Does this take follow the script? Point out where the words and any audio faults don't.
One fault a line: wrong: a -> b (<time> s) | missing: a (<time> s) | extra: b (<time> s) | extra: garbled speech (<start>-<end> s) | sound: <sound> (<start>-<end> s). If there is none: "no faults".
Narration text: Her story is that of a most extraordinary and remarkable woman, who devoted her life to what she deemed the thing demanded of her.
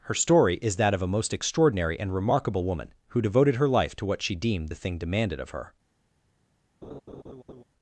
sound: laugh (6.8-7.6 s)